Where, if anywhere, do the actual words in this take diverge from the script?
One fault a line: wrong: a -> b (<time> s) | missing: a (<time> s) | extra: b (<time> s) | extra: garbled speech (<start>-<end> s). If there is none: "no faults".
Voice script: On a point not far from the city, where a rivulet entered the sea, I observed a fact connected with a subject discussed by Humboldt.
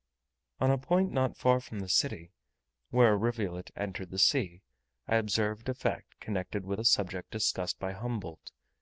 no faults